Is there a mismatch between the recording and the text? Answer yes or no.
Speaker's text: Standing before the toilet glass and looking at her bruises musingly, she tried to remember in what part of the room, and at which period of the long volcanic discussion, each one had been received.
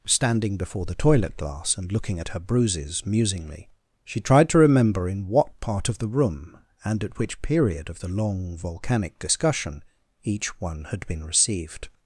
no